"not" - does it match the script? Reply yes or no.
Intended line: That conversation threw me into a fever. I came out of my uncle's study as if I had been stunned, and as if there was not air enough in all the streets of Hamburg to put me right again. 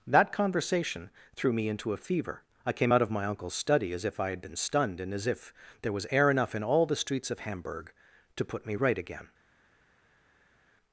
no